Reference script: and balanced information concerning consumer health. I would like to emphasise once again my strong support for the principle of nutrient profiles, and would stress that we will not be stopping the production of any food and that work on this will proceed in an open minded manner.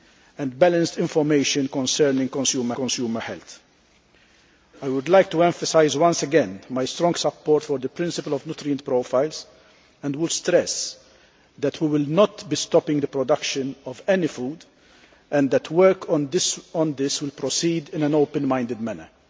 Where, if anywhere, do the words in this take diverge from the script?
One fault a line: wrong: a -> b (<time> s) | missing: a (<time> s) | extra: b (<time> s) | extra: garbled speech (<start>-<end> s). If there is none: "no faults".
extra: consumer (2.7 s)